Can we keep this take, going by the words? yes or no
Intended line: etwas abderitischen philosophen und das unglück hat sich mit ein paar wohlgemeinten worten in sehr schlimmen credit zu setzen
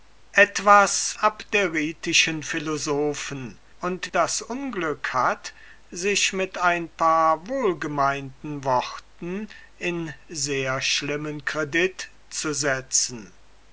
yes